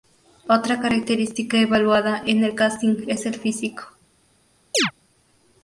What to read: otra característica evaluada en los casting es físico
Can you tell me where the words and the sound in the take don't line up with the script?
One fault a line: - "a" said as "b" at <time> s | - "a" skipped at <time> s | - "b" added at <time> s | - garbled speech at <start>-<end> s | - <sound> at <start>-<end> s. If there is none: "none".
- "los" said as "el" at 2.4 s
- "el" added at 3.2 s
- chirp at 4.7-4.9 s